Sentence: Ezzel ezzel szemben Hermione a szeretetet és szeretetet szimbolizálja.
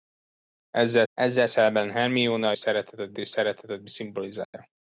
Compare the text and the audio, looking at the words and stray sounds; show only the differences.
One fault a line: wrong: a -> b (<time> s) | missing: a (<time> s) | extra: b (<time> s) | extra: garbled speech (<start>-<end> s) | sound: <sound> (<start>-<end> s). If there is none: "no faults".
sound: dropout (4.4-4.5 s)